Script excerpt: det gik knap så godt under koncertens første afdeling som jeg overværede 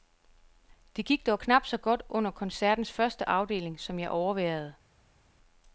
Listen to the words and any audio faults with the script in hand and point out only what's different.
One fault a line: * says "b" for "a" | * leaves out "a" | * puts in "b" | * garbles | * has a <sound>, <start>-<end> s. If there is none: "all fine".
* puts in "dog"